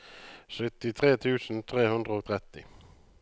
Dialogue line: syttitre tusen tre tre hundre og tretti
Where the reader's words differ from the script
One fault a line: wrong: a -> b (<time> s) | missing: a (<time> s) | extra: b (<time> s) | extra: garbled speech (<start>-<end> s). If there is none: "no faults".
missing: tre (1.9 s)